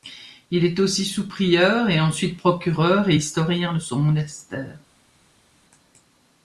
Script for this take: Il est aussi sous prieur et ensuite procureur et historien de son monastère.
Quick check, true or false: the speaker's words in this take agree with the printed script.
true